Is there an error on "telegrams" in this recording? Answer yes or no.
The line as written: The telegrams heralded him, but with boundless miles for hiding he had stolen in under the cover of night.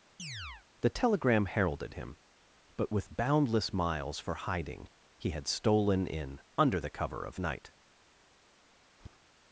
yes